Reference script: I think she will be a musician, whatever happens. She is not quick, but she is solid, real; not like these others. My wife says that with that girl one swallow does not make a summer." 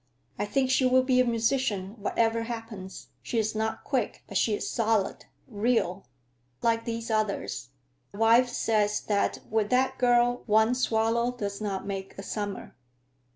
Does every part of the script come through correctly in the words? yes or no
no